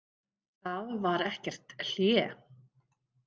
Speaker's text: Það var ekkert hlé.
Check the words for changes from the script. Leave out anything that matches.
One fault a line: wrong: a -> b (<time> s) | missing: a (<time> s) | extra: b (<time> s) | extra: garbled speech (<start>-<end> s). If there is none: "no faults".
no faults